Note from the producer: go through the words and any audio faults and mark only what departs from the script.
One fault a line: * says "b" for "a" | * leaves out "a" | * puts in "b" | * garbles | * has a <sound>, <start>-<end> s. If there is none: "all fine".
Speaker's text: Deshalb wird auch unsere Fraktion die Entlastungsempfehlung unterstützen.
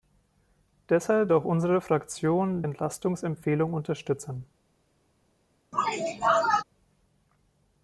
* leaves out "wird"
* leaves out "die"
* has a sneeze, 5.7-6.6 s